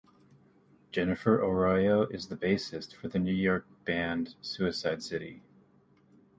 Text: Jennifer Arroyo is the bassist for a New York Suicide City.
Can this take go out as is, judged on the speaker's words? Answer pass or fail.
fail